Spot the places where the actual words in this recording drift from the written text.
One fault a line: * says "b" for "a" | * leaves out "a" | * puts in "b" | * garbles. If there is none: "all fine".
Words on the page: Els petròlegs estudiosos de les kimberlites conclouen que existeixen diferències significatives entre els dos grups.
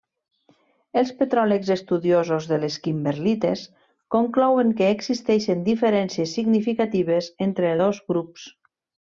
* leaves out "els"